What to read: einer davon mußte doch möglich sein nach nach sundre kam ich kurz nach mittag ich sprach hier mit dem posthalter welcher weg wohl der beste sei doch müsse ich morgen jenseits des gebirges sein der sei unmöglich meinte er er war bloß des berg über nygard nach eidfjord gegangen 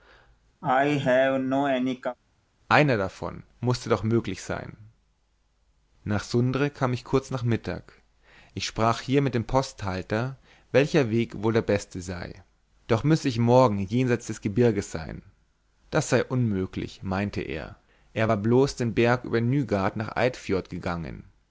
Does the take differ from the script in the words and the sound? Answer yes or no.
yes